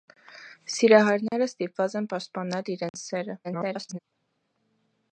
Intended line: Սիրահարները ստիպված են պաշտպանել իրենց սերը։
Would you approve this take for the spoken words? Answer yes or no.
no